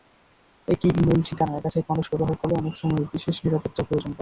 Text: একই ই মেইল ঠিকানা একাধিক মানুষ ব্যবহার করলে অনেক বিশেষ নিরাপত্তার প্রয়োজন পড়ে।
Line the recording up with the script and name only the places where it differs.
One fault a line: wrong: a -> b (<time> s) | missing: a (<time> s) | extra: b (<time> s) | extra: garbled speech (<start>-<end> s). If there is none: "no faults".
extra: সময় (2.8 s)